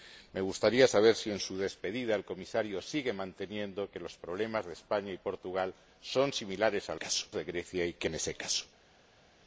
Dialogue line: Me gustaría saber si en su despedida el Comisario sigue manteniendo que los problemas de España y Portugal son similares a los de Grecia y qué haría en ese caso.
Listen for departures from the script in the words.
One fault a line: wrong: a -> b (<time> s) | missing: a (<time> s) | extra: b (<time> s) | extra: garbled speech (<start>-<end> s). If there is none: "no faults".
wrong: los -> caso (6.9 s)
missing: haría (8.1 s)